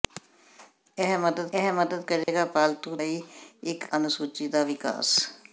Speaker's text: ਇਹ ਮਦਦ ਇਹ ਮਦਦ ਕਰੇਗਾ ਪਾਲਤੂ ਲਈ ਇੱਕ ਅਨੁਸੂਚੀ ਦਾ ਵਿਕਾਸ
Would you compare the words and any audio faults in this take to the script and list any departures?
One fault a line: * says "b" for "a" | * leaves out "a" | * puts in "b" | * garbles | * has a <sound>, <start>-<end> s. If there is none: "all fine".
* has a dropout, 2.2-2.3 s